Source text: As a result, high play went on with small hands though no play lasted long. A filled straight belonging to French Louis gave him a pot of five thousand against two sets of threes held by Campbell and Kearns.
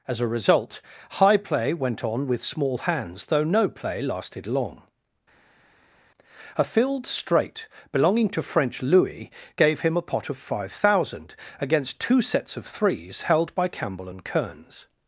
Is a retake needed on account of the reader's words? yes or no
no